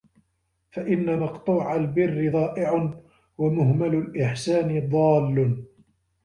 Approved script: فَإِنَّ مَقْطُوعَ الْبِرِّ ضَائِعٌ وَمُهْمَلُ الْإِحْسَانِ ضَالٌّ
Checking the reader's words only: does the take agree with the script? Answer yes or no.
yes